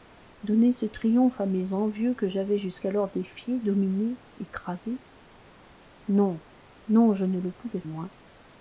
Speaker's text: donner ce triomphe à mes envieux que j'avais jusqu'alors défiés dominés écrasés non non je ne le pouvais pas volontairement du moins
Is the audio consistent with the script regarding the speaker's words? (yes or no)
no